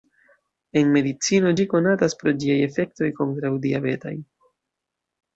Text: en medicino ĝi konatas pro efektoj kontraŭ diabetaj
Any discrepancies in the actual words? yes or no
yes